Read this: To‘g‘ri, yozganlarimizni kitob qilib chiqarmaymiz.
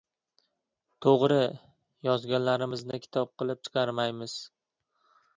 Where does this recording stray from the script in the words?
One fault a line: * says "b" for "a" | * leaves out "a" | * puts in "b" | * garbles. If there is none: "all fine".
all fine